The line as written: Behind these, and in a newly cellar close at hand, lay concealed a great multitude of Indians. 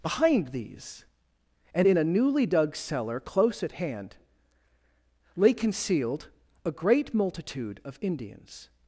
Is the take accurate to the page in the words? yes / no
no